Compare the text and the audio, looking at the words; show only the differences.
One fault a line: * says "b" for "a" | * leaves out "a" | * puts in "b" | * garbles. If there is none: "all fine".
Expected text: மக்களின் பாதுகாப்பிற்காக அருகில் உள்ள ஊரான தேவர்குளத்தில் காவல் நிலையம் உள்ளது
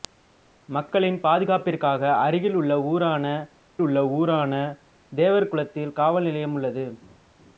* puts in "உள்ள ஊரான"